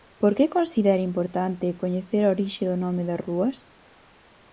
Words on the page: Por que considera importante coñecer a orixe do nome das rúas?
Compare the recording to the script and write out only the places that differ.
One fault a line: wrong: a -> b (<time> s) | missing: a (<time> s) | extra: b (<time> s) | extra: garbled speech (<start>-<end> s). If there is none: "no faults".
no faults